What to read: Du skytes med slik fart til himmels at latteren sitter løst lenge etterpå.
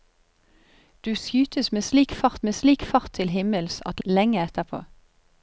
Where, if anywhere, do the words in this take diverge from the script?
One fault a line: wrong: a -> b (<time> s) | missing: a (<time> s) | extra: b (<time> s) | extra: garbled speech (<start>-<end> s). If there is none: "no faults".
extra: med slik fart (2.4 s)
missing: latteren sitter løst (4.0 s)